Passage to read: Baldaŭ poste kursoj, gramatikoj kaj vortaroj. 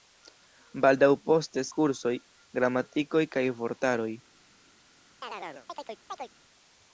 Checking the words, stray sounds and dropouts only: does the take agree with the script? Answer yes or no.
no